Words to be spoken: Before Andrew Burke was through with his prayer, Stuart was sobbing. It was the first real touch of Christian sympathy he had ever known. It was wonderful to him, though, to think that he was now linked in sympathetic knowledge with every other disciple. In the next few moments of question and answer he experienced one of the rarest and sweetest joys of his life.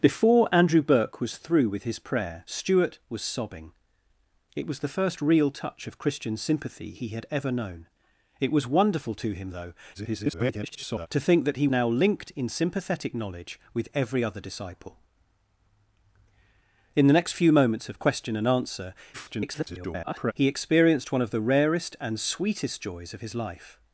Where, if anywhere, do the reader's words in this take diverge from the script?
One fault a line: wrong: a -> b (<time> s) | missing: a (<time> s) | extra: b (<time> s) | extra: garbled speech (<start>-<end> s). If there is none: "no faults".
extra: garbled speech (9.9-11.1 s)
missing: was (11.7 s)
extra: garbled speech (19.1-20.3 s)